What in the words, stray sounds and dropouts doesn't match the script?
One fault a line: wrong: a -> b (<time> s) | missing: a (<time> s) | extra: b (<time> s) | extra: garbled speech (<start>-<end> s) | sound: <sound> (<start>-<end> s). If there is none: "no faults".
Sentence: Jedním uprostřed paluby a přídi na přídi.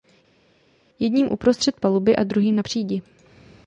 wrong: přídi -> druhým (2.2 s)